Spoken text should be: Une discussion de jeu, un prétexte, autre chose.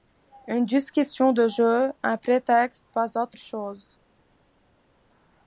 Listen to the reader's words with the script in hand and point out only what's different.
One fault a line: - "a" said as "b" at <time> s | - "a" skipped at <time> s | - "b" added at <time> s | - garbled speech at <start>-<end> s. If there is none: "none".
- "pas" added at 2.9 s